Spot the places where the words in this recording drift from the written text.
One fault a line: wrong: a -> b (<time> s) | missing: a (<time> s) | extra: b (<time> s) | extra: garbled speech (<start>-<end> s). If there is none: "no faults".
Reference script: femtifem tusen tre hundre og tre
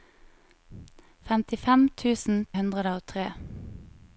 missing: tre (2.4 s)